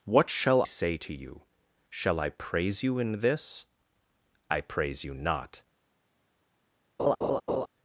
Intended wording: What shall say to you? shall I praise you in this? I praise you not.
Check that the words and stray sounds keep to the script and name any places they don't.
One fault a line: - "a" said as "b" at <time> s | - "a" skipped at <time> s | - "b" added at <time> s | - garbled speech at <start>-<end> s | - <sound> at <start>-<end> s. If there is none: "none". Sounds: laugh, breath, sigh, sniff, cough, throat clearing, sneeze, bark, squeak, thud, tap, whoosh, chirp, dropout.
- laugh at 7.0-7.7 s